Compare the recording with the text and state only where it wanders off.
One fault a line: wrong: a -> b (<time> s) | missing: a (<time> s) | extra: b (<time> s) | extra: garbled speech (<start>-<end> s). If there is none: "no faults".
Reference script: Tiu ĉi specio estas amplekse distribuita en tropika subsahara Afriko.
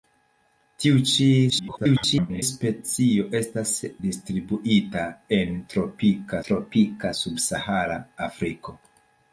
extra: garbled speech (1.5-2.4 s)
missing: amplekse (3.7 s)
extra: tropika (6.5 s)